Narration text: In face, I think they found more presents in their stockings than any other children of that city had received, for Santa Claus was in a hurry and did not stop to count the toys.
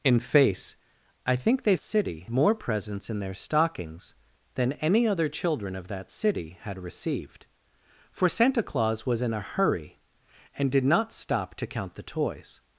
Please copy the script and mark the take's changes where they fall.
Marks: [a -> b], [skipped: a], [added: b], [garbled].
In face, I think they [found -> city] more presents in their stockings than any other children of that city had received, for Santa Claus was in a hurry and did not stop to count the toys.